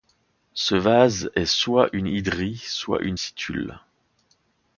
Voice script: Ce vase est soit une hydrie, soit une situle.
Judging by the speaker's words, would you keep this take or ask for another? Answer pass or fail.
pass